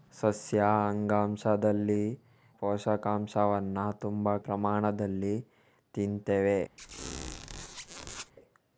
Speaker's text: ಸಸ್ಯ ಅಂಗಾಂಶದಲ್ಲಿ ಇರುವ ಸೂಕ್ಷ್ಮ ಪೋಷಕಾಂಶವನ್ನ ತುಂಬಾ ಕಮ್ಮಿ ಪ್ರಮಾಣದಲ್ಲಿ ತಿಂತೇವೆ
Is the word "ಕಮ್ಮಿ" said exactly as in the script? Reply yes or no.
no